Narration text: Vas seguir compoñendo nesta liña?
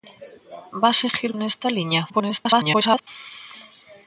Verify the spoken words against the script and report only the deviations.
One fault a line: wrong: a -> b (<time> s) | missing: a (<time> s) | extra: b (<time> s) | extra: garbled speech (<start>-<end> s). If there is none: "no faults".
missing: compoñendo (1.3 s)
extra: garbled speech (2.1-3.1 s)